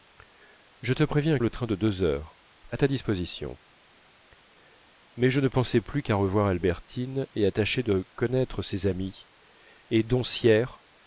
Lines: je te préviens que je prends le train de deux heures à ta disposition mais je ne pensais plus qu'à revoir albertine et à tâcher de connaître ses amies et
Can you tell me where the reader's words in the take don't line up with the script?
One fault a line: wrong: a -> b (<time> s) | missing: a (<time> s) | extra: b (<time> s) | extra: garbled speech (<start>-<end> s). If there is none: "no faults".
missing: que je prends (1.4 s)